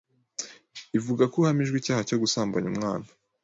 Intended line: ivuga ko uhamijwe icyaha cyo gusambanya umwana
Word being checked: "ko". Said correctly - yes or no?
yes